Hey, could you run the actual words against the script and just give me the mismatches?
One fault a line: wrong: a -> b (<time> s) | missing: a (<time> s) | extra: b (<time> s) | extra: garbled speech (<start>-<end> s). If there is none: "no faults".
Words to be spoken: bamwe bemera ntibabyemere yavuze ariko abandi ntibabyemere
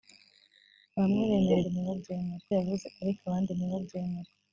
no faults